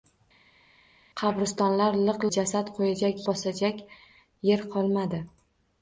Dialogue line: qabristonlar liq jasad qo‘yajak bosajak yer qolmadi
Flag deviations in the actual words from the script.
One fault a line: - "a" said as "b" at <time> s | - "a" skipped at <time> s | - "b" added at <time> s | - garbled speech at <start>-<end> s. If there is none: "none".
none